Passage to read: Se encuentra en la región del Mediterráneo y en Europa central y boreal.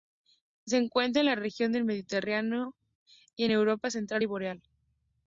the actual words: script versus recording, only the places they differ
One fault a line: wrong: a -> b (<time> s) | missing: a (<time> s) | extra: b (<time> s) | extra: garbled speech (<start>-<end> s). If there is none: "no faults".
no faults